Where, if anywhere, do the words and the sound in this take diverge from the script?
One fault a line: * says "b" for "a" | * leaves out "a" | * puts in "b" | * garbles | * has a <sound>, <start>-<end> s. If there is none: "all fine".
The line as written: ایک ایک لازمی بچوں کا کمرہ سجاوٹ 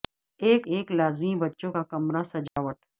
* has a dropout, 2.5-2.6 s